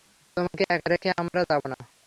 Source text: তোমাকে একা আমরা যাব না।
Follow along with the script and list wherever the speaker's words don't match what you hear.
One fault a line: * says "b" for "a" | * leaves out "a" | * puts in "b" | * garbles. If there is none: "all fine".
* puts in "রেখে"